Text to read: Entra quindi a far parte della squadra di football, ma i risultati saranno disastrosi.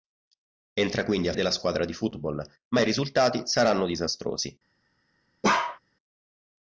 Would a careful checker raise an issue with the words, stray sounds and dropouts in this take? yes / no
yes